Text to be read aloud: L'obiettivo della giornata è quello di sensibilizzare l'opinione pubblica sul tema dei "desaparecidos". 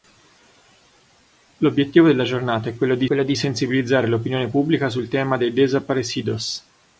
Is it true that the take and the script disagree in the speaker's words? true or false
true